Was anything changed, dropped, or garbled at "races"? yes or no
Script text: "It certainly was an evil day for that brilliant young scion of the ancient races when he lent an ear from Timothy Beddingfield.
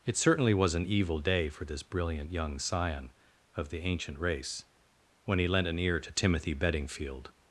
yes